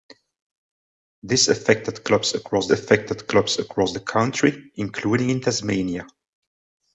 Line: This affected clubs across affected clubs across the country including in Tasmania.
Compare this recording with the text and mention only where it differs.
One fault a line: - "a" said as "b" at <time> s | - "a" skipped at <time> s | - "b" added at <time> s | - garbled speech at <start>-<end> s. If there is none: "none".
none